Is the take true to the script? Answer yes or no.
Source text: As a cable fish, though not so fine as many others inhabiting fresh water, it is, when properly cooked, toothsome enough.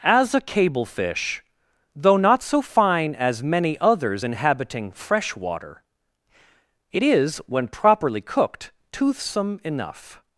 yes